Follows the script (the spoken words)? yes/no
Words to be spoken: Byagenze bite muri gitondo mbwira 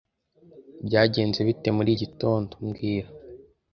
yes